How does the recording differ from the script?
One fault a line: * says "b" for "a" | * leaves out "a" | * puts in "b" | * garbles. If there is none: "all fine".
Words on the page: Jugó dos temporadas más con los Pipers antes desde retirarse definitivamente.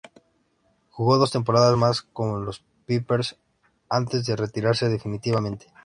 * says "de" for "desde"